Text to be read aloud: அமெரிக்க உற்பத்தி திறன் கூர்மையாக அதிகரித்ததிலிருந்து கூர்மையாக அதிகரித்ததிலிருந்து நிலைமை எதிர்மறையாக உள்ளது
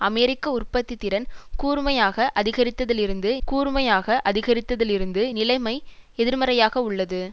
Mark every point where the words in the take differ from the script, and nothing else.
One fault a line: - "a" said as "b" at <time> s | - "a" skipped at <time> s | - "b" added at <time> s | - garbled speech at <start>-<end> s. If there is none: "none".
none